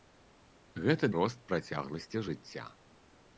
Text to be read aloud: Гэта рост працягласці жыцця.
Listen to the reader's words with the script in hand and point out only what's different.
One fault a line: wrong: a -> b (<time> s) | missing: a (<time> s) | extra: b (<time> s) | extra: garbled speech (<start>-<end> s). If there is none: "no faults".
no faults